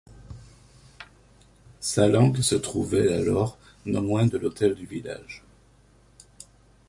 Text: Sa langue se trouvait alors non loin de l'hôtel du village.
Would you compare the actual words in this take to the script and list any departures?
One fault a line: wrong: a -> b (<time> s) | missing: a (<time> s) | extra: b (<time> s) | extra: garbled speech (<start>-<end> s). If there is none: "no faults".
no faults